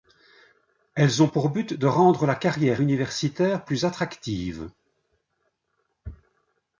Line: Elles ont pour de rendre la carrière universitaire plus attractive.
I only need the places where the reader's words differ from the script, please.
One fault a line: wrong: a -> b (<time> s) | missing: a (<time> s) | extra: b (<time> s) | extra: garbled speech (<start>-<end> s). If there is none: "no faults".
extra: but (1.5 s)